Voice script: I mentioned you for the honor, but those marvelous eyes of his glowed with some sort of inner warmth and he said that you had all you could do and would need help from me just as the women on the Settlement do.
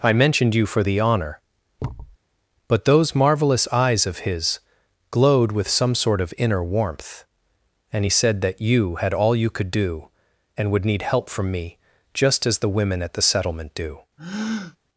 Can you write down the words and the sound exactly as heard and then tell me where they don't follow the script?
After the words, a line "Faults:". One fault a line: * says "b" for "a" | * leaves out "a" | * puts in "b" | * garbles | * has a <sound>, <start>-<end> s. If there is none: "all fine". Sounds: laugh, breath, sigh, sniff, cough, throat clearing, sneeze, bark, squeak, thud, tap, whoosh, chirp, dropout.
I mentioned you for the honor, but those marvelous eyes of his glowed with some sort of inner warmth and he said that you had all you could do and would need help from me just as the women at the Settlement do.
Faults:
* has a thud, 1.8-2.2 s
* says "at" for "on"
* has a breath, 14.2-14.8 s